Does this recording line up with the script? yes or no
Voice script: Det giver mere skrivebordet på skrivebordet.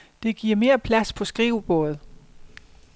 no